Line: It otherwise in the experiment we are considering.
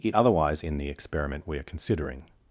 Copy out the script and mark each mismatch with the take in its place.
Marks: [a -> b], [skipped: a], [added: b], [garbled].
It otherwise in the experiment we are considering.